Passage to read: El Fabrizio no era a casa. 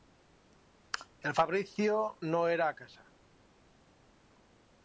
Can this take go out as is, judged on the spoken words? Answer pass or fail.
pass